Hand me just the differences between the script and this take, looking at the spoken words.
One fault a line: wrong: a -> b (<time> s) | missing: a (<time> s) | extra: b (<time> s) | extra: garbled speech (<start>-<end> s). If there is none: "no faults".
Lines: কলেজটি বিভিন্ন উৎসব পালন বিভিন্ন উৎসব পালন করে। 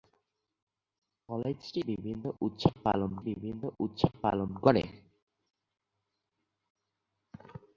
no faults